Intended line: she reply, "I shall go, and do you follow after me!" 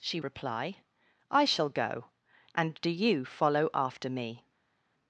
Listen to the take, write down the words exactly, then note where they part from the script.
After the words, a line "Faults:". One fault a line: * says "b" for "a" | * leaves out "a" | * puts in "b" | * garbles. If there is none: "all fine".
she reply, "I shall go, and do you follow after me!"
Faults:
all fine